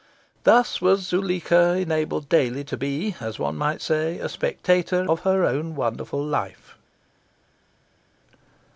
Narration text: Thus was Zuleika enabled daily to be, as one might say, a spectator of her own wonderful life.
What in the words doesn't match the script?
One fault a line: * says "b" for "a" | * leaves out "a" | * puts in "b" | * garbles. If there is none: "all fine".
all fine